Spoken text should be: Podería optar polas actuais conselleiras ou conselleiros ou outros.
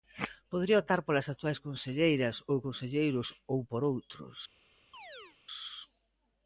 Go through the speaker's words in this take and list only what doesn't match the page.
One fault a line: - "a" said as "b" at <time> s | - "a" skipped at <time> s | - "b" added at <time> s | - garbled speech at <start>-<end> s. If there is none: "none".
- "por" added at 3.7 s